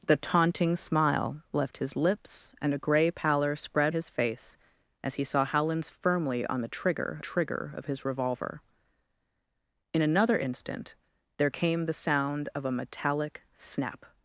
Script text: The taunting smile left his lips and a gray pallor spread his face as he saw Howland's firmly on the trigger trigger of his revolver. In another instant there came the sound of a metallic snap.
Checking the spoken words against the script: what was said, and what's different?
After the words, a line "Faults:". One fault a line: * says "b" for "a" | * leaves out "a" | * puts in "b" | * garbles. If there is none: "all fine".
The taunting smile left his lips and a gray pallor spread his face as he saw Howland's firmly on the trigger trigger of his revolver. In another instant there came the sound of a metallic snap.
Faults:
all fine